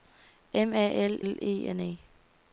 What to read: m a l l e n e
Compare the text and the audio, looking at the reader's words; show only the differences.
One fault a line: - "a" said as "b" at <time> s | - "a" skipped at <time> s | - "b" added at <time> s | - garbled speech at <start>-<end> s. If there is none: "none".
none